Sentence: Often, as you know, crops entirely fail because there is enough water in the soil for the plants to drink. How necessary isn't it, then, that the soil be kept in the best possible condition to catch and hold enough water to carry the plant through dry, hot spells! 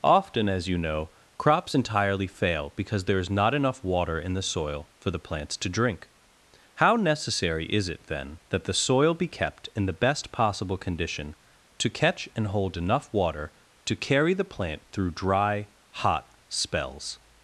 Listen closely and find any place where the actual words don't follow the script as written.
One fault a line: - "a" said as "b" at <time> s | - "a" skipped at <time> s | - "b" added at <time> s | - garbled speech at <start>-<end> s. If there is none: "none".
- "not" added at 3.3 s
- "isn't" said as "is" at 7.7 s